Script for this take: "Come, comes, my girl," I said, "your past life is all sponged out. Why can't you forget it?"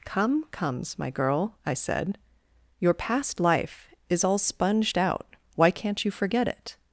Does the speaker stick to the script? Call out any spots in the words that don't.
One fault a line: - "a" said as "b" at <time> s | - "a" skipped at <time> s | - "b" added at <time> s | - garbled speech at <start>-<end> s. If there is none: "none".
none